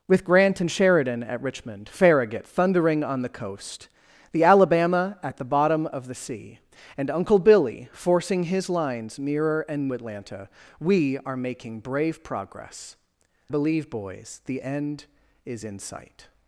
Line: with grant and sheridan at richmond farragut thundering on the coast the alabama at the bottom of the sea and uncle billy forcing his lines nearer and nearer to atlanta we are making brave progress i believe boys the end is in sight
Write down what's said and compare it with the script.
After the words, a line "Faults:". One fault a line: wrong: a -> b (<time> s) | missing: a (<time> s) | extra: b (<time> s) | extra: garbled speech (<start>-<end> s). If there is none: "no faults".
with grant and sheridan at richmond farragut thundering on the coast the alabama at the bottom of the sea and uncle billy forcing his lines nearer and atlanta we are making brave progress believe boys the end is in sight
Faults:
missing: nearer to (9.9 s)
missing: i (13.0 s)